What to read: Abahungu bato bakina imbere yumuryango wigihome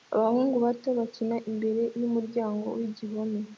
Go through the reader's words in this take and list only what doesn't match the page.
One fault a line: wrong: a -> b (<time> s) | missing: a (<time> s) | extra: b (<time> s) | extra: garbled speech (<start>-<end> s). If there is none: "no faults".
no faults